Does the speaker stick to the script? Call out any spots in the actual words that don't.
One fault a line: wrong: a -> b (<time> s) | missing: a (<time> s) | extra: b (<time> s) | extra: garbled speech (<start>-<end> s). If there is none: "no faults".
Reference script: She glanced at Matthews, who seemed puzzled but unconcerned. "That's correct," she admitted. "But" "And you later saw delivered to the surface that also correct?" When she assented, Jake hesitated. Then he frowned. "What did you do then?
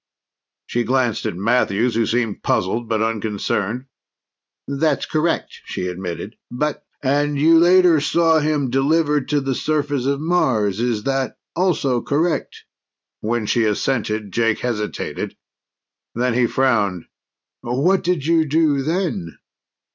extra: him (8.4 s)
extra: of Mars Is (10.0 s)